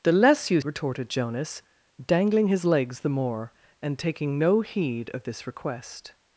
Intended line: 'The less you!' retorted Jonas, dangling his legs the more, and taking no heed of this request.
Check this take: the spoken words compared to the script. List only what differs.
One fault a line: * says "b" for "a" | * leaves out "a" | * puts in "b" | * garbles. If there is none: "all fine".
all fine